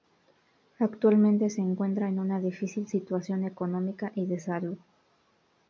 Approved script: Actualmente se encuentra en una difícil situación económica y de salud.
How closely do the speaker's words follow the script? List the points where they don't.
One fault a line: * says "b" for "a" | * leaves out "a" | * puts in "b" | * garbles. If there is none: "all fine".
all fine